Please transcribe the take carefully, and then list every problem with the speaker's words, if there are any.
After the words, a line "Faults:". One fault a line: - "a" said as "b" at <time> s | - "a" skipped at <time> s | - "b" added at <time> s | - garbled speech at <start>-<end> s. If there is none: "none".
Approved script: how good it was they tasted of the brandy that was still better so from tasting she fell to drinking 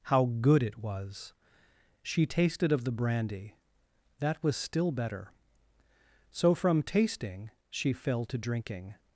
how good it was she tasted of the brandy that was still better so from tasting she fell to drinking
Faults:
- "they" said as "she" at 2.0 s